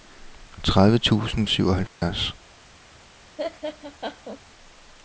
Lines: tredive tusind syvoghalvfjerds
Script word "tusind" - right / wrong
right